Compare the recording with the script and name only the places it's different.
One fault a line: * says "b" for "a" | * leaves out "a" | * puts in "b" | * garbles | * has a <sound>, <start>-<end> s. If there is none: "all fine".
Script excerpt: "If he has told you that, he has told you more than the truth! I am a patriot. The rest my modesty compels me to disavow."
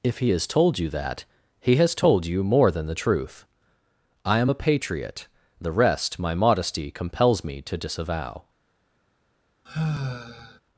* has a sigh, 9.7-10.6 s